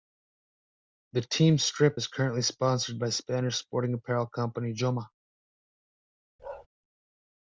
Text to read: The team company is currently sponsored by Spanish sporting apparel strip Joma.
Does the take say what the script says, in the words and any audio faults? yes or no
no